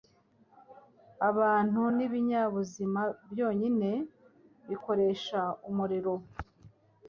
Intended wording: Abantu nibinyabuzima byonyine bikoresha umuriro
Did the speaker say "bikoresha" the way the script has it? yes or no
yes